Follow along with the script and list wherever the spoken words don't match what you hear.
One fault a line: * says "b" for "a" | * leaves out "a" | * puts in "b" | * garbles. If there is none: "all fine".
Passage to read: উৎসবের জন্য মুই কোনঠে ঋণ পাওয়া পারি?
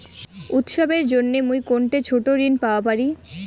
* puts in "ছোট"